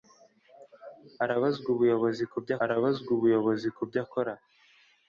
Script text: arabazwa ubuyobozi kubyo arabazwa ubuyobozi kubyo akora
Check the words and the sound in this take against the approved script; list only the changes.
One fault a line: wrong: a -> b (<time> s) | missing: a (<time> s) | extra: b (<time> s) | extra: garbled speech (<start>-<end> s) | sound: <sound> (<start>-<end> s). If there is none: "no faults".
no faults